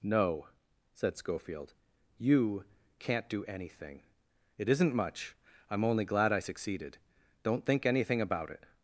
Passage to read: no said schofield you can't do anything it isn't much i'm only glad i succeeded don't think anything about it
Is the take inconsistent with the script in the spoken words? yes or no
no